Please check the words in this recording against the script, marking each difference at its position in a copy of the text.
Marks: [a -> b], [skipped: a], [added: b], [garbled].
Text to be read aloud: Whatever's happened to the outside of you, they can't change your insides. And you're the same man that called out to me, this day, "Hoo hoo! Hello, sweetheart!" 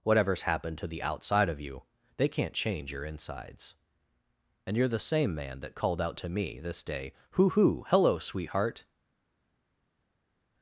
Whatever's happened to the outside of you, they can't change your insides. And you're the same man that called out to me, this day, "Hoo hoo! Hello, sweetheart!"